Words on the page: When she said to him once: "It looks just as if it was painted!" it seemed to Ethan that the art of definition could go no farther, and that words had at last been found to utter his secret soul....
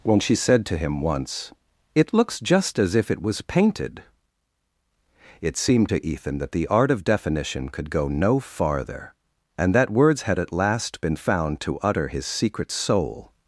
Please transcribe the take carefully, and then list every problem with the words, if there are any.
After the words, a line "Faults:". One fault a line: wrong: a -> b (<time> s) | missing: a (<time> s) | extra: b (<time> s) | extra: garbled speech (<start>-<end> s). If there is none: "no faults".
When she said to him once: "It looks just as if it was painted!" it seemed to Ethan that the art of definition could go no farther, and that words had at last been found to utter his secret soul....
Faults:
no faults